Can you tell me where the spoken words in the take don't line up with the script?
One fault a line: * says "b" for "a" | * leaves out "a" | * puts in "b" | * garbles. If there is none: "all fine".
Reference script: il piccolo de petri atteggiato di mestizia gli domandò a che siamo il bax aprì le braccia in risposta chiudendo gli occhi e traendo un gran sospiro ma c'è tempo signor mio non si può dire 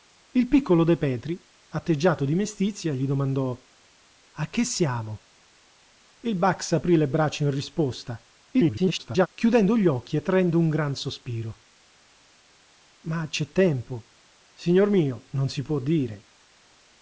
* garbles